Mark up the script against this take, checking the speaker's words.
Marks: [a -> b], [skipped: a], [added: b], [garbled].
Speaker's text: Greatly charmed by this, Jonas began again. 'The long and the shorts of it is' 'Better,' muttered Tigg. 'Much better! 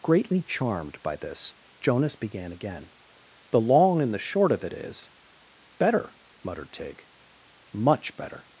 Greatly charmed by this, Jonas began again. 'The long and the [shorts -> short] of it is' 'Better,' muttered Tigg. 'Much better!